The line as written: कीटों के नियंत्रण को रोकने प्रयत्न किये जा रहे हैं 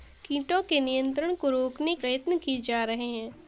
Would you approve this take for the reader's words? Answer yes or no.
yes